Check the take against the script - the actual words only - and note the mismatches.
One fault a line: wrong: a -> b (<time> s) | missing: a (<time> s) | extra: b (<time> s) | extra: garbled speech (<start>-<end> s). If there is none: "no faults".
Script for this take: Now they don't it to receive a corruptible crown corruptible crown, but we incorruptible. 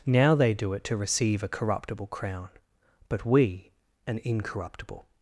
wrong: don't -> do (0.5 s)
missing: corruptible crown (2.5 s)
extra: an (4.1 s)